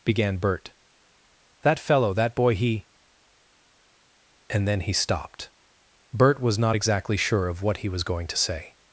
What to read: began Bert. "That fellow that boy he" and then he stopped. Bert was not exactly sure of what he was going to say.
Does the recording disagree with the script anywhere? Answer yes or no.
no